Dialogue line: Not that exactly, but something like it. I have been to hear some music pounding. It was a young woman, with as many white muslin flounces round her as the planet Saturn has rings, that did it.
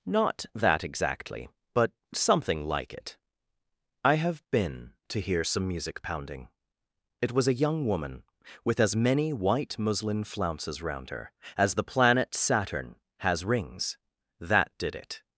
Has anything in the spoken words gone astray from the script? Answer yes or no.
no